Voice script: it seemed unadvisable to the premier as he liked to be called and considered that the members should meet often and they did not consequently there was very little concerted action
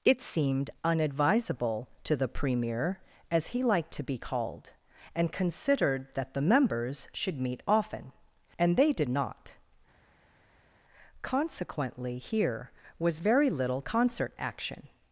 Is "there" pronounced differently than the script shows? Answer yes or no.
yes